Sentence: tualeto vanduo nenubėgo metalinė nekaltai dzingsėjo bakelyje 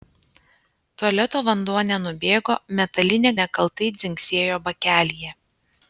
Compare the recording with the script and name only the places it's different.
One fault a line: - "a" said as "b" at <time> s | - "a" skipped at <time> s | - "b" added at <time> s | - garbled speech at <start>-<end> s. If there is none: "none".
none